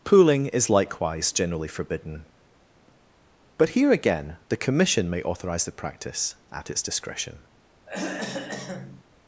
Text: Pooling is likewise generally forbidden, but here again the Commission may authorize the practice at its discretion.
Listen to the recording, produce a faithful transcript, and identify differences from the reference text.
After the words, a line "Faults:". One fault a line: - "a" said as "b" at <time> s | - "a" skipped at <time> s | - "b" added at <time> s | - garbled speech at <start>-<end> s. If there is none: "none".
Pooling is likewise generally forbidden, but here again the Commission may authorize the practice at its discretion.
Faults:
none